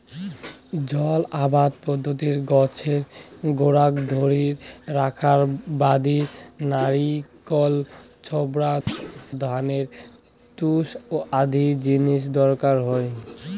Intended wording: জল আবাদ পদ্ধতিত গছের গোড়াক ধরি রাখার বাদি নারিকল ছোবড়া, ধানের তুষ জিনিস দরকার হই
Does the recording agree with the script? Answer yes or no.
no